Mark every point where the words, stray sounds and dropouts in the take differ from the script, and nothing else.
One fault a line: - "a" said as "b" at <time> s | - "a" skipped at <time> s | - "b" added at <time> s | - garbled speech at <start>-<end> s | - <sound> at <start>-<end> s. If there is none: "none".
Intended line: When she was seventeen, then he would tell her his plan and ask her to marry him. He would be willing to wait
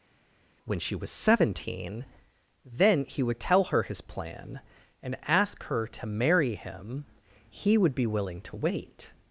none